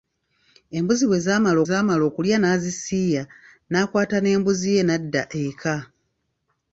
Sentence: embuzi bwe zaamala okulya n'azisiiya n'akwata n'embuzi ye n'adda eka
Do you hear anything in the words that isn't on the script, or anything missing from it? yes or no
yes